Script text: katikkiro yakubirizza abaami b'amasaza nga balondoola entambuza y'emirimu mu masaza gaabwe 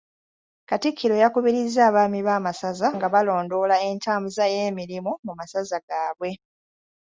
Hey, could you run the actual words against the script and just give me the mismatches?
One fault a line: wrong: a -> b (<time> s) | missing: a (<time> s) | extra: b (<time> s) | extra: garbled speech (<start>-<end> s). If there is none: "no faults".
no faults